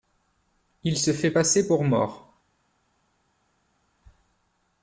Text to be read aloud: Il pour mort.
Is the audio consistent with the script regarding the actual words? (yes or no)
no